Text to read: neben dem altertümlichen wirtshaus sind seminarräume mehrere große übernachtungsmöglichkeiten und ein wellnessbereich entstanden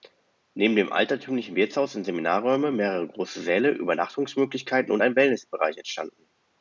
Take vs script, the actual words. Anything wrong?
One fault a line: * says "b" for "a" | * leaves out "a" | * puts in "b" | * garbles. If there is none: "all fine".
* puts in "säle"